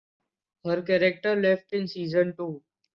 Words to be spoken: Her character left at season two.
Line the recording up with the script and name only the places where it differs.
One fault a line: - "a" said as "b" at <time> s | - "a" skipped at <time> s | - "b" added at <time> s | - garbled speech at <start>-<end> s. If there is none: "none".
- "at" said as "in" at 1.7 s